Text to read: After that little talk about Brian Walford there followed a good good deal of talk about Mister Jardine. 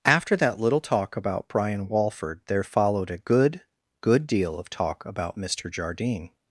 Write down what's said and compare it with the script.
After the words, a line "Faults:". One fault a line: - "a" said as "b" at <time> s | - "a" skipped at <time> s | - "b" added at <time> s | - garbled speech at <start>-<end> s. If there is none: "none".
After that little talk about Brian Walford there followed a good good deal of talk about Mister Jardine.
Faults:
none